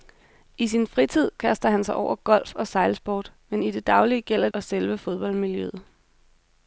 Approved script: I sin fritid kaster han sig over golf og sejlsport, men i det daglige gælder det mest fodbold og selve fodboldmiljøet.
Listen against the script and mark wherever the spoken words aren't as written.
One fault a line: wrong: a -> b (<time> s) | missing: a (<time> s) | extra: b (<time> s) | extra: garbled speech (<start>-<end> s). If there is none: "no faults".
missing: det mest fodbold (4.5 s)